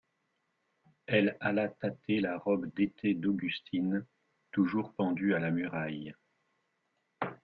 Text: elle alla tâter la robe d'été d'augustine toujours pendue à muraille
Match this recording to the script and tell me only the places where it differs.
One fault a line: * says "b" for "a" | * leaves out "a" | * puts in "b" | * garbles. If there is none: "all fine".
* puts in "la"